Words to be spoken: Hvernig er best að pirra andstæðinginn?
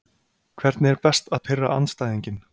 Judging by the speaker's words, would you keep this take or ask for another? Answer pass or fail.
pass